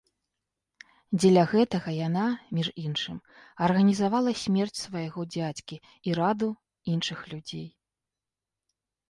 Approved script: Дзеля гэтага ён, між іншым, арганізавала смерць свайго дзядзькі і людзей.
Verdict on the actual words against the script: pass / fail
fail